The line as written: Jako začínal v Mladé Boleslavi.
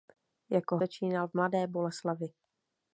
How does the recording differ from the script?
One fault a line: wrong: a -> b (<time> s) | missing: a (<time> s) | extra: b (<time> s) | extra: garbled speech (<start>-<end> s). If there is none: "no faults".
no faults